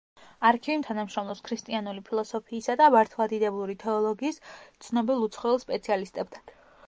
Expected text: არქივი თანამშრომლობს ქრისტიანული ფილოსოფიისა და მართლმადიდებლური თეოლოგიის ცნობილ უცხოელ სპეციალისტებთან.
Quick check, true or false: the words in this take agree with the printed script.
true